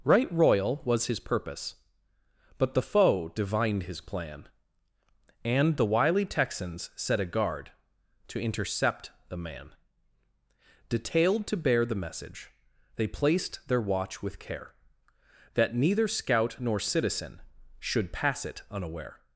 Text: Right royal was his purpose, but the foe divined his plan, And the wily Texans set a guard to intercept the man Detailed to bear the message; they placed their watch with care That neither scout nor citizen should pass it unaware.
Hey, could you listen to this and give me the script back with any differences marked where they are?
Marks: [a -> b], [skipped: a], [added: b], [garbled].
Right royal was his purpose, but the foe divined his plan, And the wily Texans set a guard to intercept the man Detailed to bear the message; they placed their watch with care That neither scout nor citizen should pass it unaware.